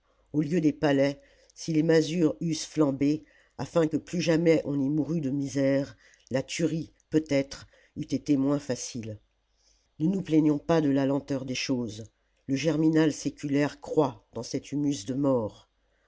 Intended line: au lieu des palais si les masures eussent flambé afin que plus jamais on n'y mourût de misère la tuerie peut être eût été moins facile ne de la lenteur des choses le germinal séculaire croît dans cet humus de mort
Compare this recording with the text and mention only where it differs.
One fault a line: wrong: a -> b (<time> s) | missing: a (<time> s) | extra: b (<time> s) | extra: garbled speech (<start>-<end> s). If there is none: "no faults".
extra: nous plaignons pas (10.1 s)